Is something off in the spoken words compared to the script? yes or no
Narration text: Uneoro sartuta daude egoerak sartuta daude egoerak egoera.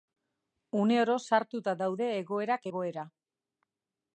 yes